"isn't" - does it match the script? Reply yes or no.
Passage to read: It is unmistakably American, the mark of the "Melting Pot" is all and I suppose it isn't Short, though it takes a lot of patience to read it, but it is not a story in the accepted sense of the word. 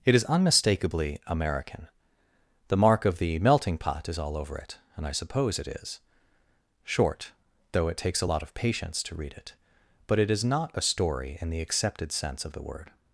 no